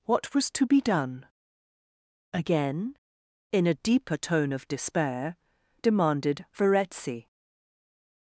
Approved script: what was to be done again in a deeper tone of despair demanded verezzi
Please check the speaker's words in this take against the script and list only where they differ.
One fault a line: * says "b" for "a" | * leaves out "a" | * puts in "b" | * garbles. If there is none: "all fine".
all fine